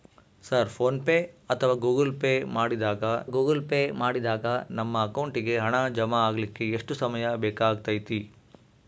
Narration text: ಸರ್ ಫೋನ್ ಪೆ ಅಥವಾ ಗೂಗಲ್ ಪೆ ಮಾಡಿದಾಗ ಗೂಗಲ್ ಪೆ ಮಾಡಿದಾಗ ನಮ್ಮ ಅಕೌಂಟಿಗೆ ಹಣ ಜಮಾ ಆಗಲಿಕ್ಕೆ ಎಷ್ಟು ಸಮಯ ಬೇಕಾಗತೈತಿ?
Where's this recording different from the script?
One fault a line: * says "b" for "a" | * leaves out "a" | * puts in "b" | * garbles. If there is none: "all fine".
all fine